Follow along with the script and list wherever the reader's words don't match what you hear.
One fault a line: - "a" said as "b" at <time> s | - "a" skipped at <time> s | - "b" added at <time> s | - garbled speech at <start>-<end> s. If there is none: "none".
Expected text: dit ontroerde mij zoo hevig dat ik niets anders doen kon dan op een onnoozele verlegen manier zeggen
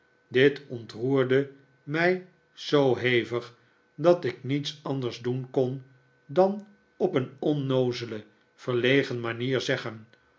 none